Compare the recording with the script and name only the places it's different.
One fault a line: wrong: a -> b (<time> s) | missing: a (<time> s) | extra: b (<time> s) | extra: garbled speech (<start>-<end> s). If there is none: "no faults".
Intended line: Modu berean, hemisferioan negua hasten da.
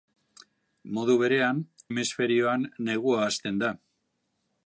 no faults